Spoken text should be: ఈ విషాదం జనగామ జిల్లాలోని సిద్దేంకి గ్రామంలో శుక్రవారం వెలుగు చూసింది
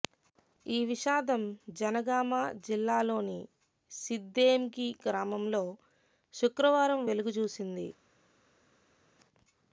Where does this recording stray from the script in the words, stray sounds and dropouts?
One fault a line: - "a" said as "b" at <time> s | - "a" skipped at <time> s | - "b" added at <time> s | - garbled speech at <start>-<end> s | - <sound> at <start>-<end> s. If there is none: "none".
none